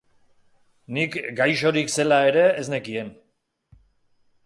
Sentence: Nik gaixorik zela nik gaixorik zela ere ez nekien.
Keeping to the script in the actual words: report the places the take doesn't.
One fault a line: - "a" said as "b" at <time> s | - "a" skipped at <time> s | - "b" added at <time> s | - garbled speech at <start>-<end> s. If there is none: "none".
- "nik gaixorik zela" skipped at 2.2 s